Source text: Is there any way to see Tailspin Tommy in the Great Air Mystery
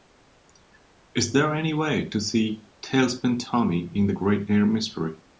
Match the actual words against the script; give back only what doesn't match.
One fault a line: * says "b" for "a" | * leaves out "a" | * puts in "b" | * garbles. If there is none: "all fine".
all fine